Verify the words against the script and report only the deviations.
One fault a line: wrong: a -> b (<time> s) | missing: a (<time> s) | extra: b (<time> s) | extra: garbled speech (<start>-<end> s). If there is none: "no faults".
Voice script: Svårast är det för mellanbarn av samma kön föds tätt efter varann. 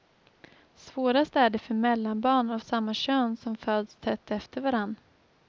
extra: som (3.4 s)